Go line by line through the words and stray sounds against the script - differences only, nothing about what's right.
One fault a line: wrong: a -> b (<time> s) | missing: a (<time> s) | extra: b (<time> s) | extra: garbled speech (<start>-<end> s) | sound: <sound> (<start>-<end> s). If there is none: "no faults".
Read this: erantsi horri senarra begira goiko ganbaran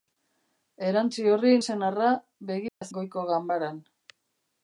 sound: dropout (2.7-2.8 s)